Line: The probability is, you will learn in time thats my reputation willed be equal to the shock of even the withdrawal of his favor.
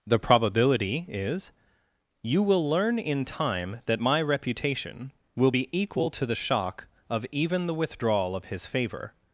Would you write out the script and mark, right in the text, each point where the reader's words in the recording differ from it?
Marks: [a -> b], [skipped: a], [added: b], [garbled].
The probability is, you will learn in time [thats -> that] my reputation [willed -> will] be equal to the shock of even the withdrawal of his favor.